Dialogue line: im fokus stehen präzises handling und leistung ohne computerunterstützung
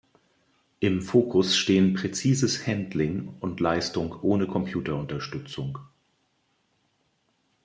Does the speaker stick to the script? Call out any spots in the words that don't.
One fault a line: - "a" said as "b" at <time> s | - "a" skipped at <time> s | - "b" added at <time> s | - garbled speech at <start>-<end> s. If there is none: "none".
none